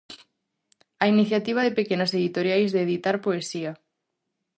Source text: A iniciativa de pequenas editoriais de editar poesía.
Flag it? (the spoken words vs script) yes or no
no